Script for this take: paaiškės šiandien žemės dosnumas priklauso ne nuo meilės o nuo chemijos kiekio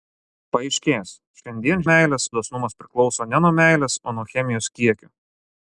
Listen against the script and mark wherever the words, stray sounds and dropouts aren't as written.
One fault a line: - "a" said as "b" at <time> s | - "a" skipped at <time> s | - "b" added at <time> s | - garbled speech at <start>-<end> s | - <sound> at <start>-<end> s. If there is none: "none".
- "žemės" said as "meilės" at 1.9 s